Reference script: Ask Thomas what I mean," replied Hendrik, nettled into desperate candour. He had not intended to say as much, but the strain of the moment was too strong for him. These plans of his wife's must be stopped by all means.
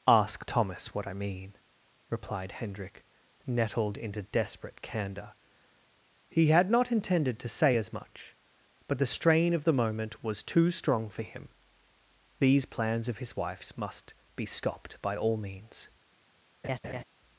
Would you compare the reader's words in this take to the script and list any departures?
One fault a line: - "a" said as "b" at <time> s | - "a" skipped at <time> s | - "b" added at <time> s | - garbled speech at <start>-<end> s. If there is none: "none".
none